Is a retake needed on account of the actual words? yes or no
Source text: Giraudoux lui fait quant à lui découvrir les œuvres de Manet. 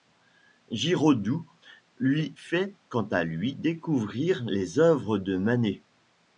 no